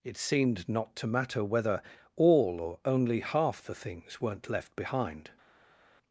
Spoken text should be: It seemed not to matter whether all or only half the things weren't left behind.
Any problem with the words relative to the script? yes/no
no